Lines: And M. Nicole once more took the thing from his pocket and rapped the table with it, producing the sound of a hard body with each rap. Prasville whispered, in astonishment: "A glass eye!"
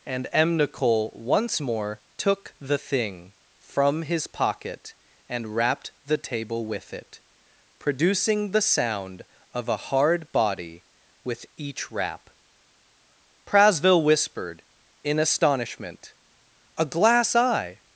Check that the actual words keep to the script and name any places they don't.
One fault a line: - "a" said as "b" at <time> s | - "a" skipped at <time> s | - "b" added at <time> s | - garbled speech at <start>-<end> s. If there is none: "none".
none